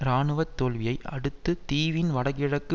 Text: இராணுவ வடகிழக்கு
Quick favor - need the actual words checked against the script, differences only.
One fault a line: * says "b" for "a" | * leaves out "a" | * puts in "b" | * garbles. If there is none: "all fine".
* puts in "தோல்வியை அடுத்து தீவின்"